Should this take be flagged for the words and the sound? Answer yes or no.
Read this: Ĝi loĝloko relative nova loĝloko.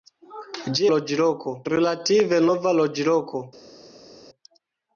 no